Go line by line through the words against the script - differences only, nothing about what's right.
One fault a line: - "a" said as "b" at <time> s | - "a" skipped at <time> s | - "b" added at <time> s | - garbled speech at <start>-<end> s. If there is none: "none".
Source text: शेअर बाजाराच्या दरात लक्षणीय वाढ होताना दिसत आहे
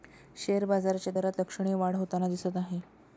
none